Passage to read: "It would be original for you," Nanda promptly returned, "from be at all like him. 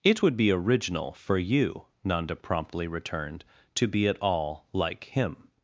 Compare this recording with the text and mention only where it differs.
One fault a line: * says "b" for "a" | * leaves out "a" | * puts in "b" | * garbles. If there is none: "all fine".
* says "to" for "from"